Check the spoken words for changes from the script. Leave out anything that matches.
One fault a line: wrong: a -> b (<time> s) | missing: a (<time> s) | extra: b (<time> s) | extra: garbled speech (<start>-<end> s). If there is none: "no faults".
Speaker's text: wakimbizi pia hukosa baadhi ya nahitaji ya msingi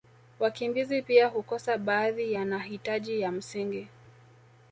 no faults